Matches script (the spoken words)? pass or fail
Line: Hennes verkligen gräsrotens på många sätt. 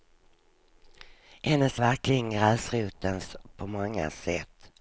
pass